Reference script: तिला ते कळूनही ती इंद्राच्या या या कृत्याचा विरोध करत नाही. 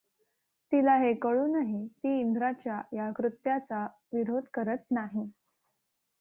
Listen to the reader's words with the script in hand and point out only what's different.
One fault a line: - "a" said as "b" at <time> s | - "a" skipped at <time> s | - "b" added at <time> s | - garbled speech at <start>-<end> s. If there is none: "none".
- "ते" said as "हे" at 1.0 s
- "या" skipped at 3.1 s